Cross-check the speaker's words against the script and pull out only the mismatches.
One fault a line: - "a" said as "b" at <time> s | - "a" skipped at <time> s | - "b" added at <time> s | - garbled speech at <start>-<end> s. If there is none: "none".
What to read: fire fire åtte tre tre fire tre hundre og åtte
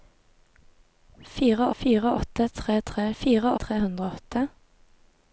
none